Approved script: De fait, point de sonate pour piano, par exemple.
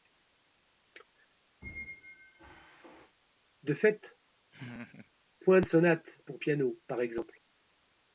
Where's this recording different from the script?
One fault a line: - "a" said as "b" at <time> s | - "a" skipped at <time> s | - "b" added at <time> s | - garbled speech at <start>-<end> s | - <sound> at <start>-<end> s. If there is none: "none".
- squeak at 1.6-3.2 s
- laugh at 4.5-5.1 s